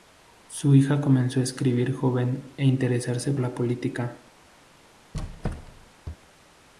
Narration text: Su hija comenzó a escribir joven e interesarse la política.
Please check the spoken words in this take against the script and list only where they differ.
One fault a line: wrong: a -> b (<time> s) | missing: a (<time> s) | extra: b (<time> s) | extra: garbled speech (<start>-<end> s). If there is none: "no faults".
no faults